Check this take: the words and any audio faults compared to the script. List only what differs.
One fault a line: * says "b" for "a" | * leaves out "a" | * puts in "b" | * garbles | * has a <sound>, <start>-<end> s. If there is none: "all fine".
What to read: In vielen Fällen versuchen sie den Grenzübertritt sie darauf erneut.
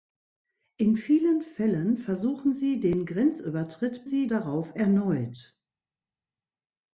all fine